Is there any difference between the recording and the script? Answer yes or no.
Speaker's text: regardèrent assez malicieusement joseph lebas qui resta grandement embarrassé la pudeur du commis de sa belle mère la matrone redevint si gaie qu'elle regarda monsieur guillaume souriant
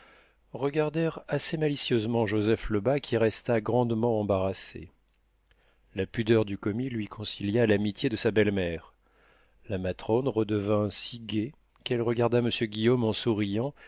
yes